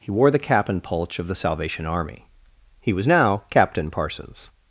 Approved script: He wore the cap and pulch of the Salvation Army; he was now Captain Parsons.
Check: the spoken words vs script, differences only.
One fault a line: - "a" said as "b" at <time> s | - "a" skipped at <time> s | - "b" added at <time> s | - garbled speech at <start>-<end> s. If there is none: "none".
none